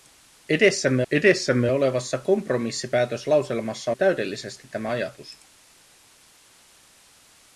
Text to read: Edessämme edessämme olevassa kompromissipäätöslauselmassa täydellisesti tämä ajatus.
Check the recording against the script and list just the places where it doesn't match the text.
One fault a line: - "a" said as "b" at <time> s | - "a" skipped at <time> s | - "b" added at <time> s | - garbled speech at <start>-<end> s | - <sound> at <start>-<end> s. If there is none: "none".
none